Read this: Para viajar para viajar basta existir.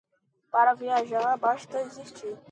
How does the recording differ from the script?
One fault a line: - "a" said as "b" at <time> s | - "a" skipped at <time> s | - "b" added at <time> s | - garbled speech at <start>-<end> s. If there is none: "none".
- "para viajar" skipped at 1.4 s